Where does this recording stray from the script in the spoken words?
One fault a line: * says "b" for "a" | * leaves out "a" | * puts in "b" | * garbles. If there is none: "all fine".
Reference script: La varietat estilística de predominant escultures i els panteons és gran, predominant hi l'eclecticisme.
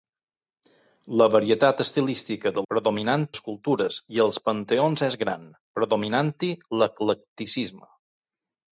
all fine